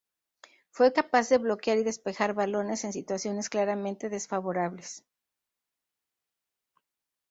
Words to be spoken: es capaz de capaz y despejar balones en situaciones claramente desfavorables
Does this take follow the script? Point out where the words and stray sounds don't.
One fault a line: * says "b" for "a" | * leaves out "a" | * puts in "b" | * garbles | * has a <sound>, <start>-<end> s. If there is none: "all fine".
* says "fue" for "es"
* says "bloquear" for "capaz"